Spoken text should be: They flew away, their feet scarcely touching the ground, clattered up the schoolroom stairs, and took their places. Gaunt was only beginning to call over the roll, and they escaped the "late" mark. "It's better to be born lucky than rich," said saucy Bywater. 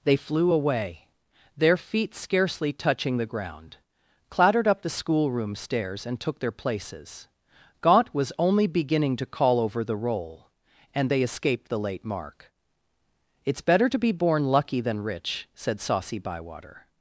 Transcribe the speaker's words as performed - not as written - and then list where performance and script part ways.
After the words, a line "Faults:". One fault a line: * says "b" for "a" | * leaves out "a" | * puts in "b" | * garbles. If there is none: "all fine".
They flew away, their feet scarcely touching the ground, clattered up the schoolroom stairs, and took their places. Gaunt was only beginning to call over the roll, and they escaped the "late" mark. "It's better to be born lucky than rich," said saucy Bywater.
Faults:
all fine